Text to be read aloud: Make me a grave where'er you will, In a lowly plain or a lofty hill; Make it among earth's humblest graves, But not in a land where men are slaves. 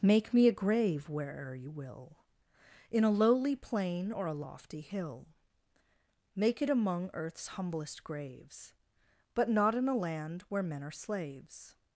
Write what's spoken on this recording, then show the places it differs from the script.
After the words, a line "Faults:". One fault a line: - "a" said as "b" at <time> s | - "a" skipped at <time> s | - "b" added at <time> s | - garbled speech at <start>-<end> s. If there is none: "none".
Make me a grave where'er you will, In a lowly plain or a lofty hill; Make it among earth's humblest graves, But not in a land where men are slaves.
Faults:
none